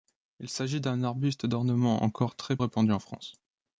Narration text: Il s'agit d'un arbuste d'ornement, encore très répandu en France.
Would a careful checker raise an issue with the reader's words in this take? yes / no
no